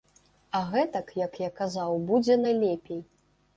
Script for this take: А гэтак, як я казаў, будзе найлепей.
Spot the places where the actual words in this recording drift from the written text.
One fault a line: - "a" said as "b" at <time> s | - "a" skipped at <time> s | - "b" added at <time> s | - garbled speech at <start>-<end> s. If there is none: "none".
none